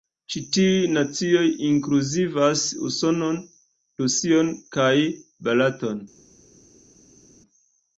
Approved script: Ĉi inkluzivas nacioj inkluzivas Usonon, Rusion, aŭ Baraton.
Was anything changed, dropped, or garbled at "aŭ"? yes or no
yes